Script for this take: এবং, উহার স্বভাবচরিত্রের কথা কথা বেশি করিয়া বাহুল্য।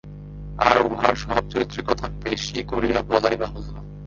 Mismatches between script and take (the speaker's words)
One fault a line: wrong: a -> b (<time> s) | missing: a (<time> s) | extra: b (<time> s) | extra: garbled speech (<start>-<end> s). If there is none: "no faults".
wrong: এবং -> আর (0.6 s)
missing: কথা (2.0 s)
extra: বলাই (3.0 s)